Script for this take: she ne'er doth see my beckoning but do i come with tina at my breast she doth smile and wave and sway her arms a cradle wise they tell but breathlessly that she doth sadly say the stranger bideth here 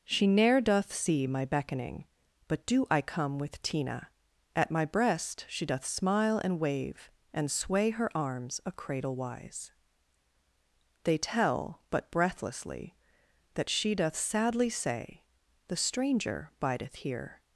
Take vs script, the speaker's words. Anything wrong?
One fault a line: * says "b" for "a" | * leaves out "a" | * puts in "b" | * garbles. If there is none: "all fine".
all fine